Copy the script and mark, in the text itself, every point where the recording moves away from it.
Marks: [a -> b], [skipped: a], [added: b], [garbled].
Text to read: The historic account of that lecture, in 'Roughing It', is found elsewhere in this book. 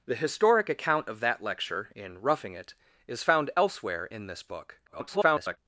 The historic account of that lecture, in 'Roughing It', is found elsewhere in this book. [garbled]